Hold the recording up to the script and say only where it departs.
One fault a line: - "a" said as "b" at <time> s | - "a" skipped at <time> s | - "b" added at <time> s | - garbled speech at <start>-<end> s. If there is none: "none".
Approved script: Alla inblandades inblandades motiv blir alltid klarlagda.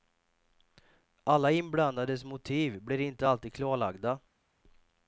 - "inblandades" skipped at 2.2 s
- "inte" added at 3.0 s